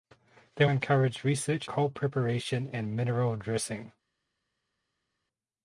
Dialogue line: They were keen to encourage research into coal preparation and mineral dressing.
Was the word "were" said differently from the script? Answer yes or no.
yes